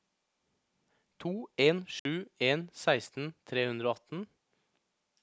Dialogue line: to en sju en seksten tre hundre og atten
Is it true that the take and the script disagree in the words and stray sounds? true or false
true